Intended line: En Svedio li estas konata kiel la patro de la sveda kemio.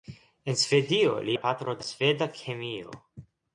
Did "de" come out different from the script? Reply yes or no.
yes